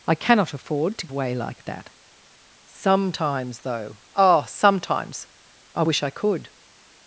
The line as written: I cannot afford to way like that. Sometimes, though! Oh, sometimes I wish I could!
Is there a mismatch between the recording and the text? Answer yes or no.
no